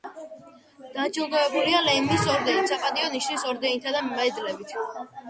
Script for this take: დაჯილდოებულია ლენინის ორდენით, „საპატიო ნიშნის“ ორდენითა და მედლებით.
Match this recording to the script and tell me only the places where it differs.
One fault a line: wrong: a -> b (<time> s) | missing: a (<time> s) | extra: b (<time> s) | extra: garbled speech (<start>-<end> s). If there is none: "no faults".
no faults